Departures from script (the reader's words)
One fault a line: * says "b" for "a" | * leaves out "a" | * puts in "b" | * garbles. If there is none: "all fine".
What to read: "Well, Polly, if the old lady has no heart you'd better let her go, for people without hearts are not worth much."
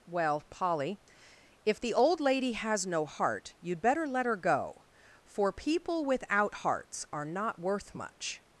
all fine